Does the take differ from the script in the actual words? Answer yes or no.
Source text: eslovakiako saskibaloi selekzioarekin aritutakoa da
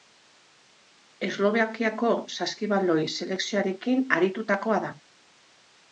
no